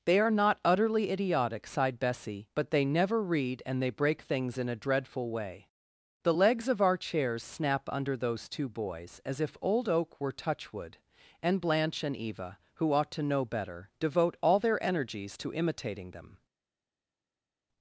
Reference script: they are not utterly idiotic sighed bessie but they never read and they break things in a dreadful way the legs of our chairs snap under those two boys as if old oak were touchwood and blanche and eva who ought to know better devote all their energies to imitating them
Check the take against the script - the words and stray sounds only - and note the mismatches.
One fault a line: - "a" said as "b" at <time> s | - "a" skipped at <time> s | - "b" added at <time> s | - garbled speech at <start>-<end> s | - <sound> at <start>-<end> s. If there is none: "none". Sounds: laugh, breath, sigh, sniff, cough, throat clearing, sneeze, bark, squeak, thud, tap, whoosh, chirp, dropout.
none